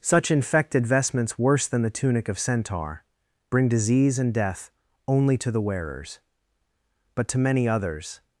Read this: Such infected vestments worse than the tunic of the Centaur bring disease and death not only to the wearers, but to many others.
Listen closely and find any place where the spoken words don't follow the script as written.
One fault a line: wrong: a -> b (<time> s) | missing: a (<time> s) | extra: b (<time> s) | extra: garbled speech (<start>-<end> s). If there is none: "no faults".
missing: the (2.4 s)
missing: not (4.7 s)